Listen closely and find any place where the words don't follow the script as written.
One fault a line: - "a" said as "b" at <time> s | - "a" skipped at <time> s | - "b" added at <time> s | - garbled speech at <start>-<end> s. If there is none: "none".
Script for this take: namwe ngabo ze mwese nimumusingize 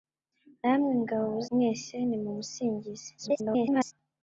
- "ze" skipped at 1.3 s
- garbled speech at 3.2-3.9 s